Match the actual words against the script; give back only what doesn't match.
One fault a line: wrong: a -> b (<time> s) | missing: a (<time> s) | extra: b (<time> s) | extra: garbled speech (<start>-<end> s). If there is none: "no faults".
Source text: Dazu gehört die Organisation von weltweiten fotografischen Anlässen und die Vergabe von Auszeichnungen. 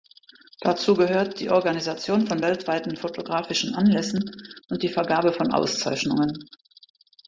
no faults